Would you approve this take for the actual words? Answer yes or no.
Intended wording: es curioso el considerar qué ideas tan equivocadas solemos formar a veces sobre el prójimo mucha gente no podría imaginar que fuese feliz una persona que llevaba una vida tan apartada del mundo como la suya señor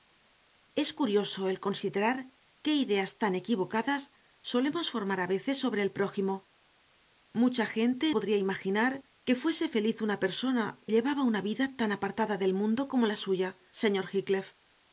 no